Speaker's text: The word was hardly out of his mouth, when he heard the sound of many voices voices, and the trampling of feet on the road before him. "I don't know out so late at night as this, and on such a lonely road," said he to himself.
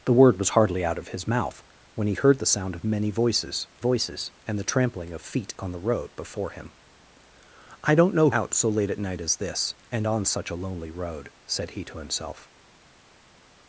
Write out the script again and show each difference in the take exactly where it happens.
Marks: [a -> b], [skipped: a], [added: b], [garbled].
The word was hardly out of his mouth, when he heard the sound of many voices voices, and the trampling of feet on the road before him. "I don't know out so late at night as this, and on such a lonely road," said he to himself.